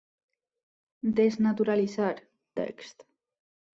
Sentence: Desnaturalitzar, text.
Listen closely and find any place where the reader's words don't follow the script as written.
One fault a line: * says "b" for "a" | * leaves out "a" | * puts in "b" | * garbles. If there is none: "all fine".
all fine